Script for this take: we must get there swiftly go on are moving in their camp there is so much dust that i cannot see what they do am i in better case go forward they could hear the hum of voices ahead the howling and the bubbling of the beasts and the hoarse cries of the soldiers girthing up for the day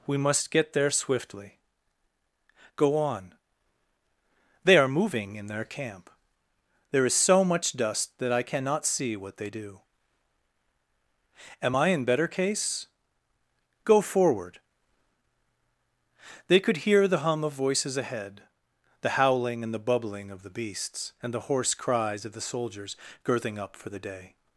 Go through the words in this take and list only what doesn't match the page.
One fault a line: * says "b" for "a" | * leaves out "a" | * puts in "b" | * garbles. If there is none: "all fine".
* puts in "they"